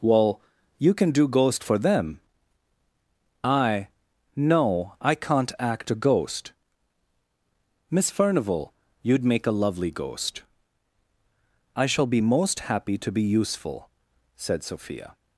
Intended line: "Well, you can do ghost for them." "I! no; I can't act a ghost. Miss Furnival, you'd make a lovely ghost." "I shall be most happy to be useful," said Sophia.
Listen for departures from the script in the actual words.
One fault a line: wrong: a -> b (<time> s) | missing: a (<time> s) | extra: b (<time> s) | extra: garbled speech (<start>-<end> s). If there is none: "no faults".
no faults